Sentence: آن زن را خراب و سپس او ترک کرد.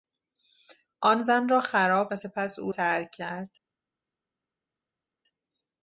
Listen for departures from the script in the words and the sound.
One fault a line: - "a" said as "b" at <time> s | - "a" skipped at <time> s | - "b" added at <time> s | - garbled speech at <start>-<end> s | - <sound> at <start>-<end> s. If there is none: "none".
none